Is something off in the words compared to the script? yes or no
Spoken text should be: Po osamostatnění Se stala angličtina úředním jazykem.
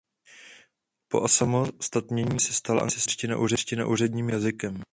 no